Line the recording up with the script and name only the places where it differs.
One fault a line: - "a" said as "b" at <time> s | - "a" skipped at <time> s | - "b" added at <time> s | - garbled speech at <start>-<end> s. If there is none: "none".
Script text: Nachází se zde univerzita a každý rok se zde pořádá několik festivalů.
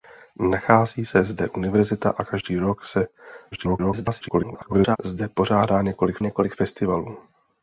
- garbled speech at 3.5-5.0 s
- "několik" added at 6.2 s